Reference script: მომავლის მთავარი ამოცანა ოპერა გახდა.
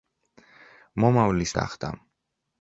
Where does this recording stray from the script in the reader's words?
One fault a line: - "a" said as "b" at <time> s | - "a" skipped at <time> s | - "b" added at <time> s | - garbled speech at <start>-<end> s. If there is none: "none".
- "მთავარი ამოცანა ოპერა" skipped at 1.5 s